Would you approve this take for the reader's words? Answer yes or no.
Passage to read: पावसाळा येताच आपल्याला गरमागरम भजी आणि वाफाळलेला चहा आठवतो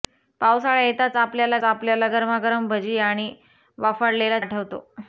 no